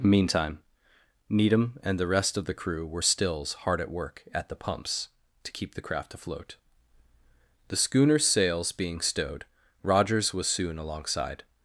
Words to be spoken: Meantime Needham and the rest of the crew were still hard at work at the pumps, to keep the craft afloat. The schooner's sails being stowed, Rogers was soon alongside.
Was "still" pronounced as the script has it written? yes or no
no